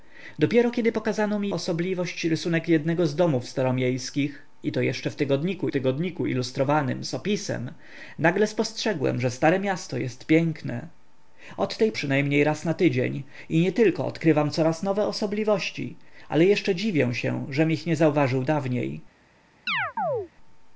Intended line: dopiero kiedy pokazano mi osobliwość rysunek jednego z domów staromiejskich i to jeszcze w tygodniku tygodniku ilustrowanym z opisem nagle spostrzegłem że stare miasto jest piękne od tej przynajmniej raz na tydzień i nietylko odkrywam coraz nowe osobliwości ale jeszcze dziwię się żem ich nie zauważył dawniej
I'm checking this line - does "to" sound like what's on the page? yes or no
yes